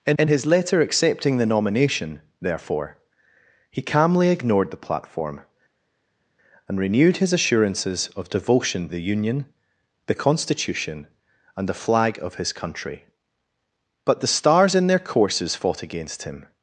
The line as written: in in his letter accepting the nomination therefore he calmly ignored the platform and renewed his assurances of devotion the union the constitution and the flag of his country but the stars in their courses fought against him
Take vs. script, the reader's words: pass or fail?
pass